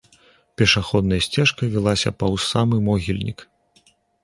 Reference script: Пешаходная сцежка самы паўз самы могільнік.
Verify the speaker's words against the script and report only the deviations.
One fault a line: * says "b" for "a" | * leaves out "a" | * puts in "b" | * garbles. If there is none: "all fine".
* says "вілася" for "самы"